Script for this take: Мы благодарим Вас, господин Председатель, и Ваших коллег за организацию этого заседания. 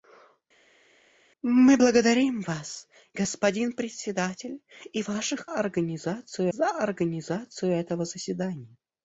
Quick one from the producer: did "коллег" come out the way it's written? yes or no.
no